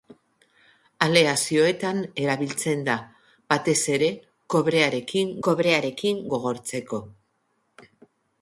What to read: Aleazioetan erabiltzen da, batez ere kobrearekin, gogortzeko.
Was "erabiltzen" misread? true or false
false